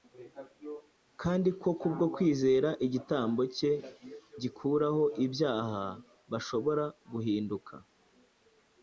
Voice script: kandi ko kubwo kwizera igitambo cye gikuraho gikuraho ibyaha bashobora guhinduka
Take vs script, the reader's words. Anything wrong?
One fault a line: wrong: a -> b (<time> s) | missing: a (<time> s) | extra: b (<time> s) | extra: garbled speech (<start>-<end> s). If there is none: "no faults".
missing: gikuraho (5.0 s)